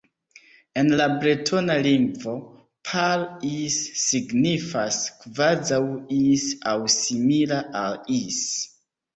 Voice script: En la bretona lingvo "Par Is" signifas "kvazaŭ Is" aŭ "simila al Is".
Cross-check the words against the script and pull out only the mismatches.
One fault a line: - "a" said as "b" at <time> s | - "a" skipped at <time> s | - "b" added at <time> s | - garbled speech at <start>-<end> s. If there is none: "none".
none